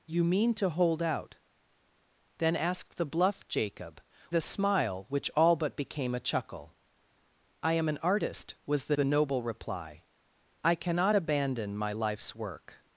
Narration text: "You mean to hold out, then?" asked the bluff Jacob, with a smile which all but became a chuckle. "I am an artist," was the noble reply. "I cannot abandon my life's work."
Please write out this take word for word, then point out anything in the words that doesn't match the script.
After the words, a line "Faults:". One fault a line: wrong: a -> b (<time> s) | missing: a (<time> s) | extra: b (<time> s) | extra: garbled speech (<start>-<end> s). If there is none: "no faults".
"You mean to hold out, then?" asked the bluff Jacob, a smile which all but became a chuckle. "I am an artist," was the the noble reply. "I cannot abandon my life's work."
Faults:
missing: with (4.0 s)
extra: the (8.9 s)